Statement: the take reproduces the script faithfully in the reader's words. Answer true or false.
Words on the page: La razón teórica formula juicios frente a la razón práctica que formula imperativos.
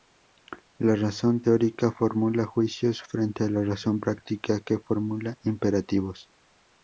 true